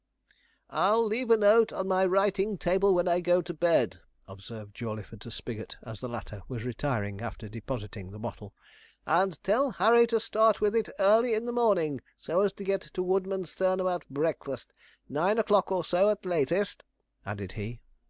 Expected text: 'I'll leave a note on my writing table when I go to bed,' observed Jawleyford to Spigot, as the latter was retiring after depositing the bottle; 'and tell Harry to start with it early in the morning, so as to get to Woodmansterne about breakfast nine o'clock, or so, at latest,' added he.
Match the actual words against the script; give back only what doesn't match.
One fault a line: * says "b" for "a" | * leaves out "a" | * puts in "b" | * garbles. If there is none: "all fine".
all fine